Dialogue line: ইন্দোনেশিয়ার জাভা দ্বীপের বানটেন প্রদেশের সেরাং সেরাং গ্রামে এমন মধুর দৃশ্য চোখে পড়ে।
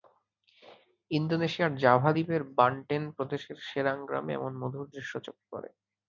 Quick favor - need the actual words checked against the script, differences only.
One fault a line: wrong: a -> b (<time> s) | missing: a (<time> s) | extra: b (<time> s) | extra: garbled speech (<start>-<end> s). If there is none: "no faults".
missing: সেরাং (4.0 s)